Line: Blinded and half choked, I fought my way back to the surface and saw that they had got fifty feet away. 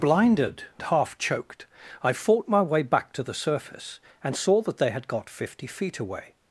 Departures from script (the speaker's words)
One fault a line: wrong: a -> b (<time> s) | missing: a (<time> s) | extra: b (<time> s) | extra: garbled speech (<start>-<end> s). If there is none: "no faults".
missing: and (0.6 s)